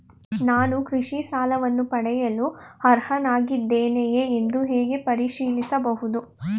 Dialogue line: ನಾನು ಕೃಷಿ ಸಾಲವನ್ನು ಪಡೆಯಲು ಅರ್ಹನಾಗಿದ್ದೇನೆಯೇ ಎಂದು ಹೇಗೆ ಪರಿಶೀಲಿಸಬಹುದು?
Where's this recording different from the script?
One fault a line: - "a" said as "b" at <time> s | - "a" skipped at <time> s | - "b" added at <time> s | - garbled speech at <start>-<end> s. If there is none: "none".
none